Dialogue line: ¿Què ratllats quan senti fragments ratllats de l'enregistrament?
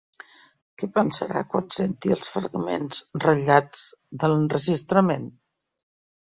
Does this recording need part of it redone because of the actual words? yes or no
yes